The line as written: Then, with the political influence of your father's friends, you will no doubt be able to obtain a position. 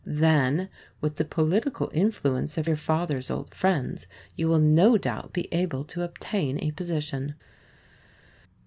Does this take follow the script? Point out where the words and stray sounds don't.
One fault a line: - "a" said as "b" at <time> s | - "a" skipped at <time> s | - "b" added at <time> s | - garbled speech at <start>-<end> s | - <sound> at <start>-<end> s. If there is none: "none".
- "old" added at 3.3 s